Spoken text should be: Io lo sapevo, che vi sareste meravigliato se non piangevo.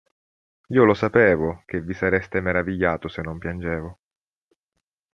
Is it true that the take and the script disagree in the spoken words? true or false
false